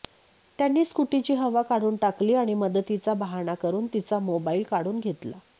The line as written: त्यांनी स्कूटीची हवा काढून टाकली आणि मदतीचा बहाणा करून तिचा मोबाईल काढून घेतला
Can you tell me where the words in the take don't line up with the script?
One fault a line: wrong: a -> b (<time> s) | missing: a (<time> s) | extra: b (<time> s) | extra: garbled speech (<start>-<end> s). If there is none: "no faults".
no faults